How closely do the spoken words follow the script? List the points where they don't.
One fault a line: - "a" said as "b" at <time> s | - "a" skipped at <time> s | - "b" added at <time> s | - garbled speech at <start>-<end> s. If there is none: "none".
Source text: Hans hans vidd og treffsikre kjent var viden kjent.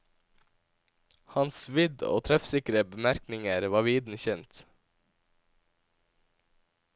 - "hans" skipped at 1.6 s
- "kjent" said as "bemerkninger" at 2.9 s